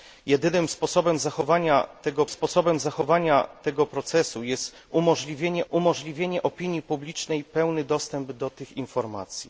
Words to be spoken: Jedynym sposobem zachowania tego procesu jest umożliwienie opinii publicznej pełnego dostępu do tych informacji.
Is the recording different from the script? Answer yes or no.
yes